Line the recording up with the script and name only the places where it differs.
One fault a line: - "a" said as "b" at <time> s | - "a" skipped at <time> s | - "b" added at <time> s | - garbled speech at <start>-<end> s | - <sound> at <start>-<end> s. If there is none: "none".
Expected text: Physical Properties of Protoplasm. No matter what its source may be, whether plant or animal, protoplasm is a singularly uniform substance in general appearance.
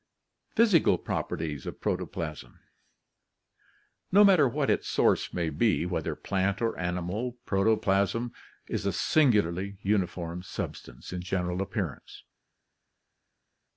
none